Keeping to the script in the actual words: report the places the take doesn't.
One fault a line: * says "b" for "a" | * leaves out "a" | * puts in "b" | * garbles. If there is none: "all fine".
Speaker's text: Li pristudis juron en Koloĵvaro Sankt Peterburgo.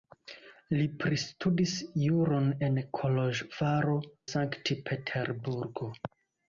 all fine